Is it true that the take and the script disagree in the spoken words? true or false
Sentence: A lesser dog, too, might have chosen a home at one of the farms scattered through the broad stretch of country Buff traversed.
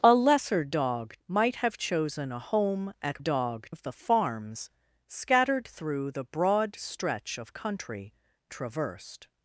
true